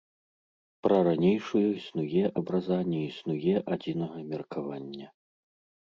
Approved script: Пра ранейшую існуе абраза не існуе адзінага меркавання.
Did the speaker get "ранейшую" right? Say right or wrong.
right